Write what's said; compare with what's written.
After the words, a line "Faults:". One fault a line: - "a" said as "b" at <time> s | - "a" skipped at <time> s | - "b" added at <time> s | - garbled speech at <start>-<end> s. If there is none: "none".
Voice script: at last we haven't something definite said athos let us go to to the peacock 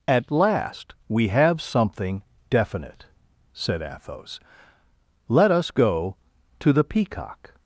at last we have something definite said athos let us go to the peacock
Faults:
- "haven't" said as "have" at 1.3 s
- "to" skipped at 6.7 s